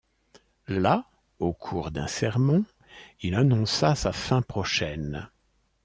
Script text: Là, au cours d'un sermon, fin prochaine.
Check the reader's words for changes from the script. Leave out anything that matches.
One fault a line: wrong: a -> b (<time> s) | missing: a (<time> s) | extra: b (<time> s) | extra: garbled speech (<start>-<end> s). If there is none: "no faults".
extra: il annonça sa (3.2 s)